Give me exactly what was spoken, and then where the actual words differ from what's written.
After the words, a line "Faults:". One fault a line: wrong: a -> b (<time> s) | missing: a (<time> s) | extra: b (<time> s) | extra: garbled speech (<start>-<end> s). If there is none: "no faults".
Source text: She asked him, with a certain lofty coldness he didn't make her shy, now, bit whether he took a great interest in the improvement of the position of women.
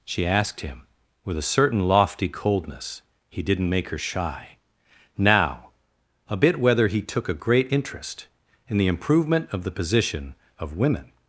She asked him, with a certain lofty coldness he didn't make her shy, now, a bit whether he took a great interest in the improvement of the position of women.
Faults:
extra: a (6.3 s)